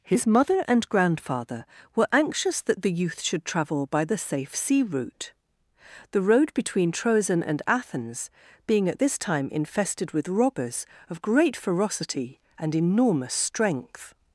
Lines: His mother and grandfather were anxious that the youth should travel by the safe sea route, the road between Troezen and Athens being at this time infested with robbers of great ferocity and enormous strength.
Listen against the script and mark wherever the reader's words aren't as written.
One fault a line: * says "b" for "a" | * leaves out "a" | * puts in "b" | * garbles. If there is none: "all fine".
all fine